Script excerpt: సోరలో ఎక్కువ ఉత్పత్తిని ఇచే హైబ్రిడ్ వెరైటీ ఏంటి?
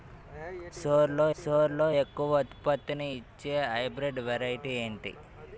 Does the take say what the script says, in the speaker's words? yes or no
no